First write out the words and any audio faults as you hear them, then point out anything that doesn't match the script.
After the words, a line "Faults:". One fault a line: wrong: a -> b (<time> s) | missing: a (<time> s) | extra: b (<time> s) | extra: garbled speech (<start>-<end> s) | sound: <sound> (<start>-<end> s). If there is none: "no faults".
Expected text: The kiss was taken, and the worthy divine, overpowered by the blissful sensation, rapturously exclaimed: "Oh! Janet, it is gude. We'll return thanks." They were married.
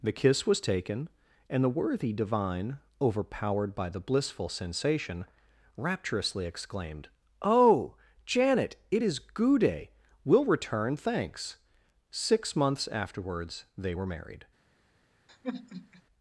The kiss was taken, and the worthy divine, overpowered by the blissful sensation, rapturously exclaimed: "Oh! Janet, it is gude. We'll return thanks." Six months afterwards they were married.
Faults:
extra: Six months afterwards (12.1 s)
sound: sigh (15.3-16.0 s)